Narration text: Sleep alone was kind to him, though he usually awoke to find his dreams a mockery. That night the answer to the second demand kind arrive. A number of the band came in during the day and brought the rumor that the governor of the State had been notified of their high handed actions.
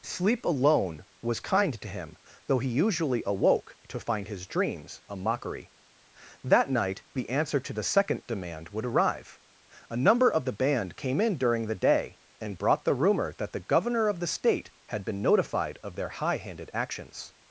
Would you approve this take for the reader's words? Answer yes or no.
no